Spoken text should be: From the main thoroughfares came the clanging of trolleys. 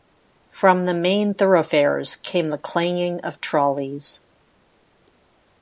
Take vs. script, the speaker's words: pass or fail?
pass